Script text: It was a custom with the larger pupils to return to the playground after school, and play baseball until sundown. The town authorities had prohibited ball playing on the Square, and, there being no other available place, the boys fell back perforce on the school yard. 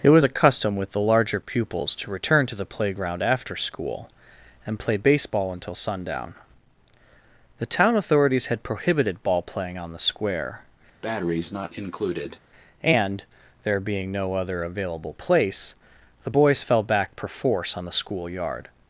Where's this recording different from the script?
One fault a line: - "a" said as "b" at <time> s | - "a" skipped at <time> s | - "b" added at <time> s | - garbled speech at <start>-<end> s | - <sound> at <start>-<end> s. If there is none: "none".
- breath at 11.0-12.4 s